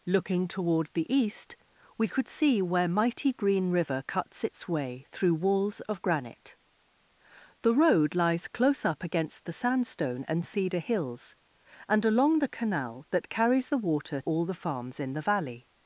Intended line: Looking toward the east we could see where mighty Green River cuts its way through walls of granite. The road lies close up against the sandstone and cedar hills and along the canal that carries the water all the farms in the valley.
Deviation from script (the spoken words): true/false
false